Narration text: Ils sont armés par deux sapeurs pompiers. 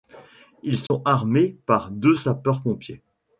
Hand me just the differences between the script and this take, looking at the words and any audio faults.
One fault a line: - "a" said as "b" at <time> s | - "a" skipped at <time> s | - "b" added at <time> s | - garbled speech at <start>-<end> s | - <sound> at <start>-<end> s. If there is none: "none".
- dropout at 0.9-0.9 s